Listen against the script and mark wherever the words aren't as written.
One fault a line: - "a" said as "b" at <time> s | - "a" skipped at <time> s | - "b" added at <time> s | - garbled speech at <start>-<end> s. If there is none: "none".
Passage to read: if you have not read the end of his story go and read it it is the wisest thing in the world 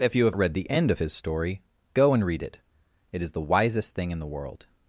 - "not" skipped at 0.3 s